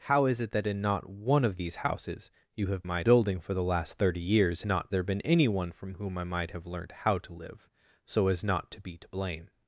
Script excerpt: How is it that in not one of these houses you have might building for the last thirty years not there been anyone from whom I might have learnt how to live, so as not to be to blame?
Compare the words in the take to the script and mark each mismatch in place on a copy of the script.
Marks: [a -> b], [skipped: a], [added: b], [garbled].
How is it that in not one of these houses you have might building for the last thirty years not there been anyone from whom I might have learnt how to live, so as not to be to blame?